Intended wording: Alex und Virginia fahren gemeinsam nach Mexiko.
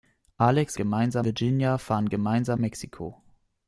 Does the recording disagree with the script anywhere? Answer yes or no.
yes